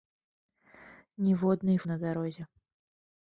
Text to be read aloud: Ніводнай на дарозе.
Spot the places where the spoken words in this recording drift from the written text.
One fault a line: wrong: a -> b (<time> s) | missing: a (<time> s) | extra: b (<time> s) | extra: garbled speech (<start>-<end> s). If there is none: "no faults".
no faults